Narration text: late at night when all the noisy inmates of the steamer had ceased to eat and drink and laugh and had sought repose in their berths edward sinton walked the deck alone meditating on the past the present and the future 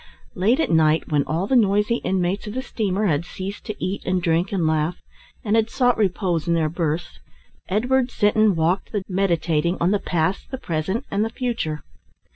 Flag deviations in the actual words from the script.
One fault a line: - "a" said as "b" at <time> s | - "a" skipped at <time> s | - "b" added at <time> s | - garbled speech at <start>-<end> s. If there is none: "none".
- "deck alone" skipped at 9.0 s